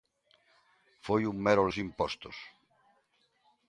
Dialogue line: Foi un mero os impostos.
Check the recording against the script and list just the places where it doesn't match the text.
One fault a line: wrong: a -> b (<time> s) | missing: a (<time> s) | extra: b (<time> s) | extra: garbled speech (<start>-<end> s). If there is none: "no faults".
no faults